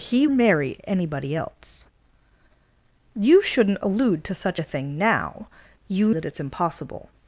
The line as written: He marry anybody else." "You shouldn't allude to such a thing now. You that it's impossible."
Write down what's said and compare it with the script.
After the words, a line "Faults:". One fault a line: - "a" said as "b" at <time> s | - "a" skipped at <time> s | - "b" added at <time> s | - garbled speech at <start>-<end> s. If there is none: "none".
He marry anybody else." "You shouldn't allude to such a thing now. You that it's impossible."
Faults:
none